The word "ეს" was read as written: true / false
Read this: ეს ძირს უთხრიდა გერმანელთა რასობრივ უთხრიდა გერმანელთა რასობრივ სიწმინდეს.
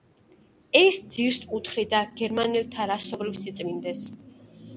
true